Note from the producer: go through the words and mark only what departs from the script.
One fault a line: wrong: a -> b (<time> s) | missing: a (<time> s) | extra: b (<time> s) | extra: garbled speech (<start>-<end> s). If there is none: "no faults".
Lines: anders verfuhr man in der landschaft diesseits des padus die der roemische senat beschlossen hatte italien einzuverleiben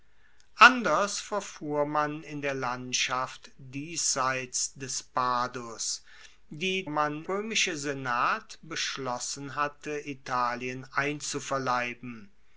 wrong: der -> man (6.9 s)